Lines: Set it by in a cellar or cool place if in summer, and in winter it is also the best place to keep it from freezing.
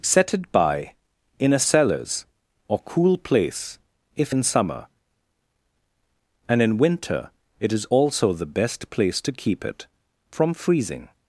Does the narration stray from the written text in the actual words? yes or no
yes